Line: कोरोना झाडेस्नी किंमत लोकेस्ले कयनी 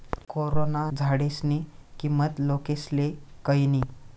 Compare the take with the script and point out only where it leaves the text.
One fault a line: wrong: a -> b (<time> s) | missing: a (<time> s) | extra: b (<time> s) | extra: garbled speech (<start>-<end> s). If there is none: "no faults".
no faults